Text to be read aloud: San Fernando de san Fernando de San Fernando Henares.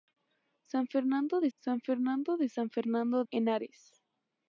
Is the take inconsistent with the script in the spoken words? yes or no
no